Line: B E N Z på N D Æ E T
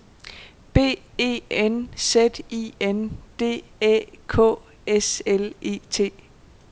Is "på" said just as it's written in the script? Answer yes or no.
no